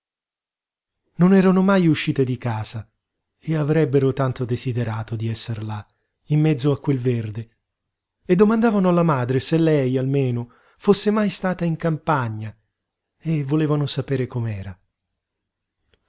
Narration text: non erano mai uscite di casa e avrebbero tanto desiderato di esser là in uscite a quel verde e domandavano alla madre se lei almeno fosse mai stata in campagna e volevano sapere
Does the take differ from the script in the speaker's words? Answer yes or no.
yes